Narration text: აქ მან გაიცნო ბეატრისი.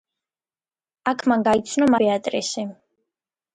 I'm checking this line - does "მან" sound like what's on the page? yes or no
yes